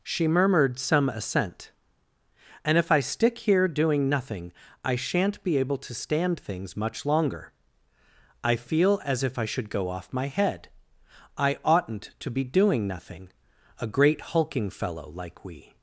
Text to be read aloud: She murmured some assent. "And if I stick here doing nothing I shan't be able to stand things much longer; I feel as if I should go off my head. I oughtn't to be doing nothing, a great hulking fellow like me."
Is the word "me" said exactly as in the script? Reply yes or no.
no